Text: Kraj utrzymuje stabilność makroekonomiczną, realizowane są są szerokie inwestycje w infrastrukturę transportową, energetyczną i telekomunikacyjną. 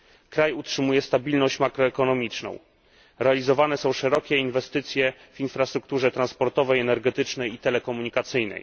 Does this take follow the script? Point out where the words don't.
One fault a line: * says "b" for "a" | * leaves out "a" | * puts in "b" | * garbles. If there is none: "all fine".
* leaves out "są"